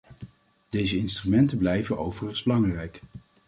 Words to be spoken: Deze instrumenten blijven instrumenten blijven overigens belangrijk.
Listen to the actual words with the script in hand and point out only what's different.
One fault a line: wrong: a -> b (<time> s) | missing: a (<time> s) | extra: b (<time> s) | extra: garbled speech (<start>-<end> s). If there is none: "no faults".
missing: instrumenten blijven (2.0 s)